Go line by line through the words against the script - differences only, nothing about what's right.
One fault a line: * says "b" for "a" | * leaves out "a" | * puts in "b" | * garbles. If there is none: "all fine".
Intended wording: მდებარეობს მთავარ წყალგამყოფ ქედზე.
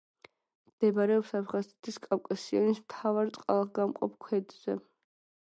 * puts in "აფხაზეთის კავკასიონის"